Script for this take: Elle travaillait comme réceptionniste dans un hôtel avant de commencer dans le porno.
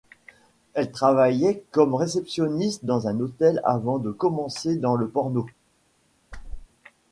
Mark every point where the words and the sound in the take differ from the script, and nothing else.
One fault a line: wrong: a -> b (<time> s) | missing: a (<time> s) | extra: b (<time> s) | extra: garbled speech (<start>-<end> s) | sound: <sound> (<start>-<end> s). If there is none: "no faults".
sound: whoosh (6.3-6.7 s)